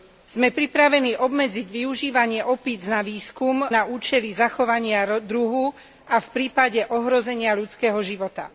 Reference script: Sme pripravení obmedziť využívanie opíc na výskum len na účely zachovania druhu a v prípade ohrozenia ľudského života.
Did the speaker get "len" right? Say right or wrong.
wrong